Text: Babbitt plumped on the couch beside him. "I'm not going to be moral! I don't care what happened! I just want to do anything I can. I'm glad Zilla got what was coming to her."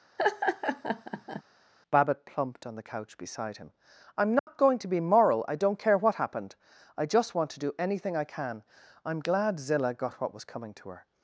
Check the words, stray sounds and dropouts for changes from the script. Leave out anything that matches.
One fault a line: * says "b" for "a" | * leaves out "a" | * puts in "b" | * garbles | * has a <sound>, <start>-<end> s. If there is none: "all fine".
* has a laugh, 0.2-1.4 s
* has a dropout, 4.4-4.5 s